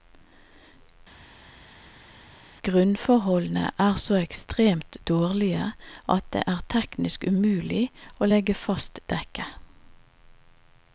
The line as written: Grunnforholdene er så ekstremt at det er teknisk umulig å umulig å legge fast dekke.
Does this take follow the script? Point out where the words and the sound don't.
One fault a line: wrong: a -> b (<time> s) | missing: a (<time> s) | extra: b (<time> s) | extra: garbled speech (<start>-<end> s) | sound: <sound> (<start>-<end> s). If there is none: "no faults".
extra: dårlige (5.1 s)
missing: umulig å (8.3 s)